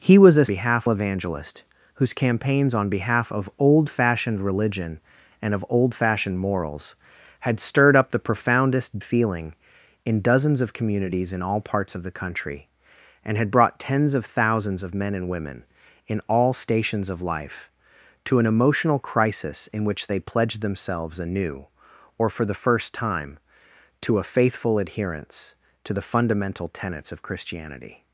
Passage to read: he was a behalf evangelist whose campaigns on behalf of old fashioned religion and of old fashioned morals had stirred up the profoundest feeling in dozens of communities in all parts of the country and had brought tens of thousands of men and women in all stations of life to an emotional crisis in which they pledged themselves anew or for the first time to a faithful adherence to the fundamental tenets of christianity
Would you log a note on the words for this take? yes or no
no